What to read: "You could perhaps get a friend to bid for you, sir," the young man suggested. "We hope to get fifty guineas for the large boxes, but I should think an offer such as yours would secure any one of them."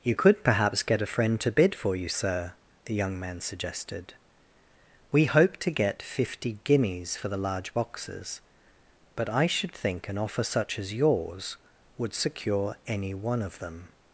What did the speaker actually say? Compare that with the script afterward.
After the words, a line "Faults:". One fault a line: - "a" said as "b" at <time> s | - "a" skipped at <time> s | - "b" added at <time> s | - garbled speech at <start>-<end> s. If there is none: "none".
"You could perhaps get a friend to bid for you, sir," the young man suggested. "We hope to get fifty guineas for the large boxes, but I should think an offer such as yours would secure any one of them."
Faults:
none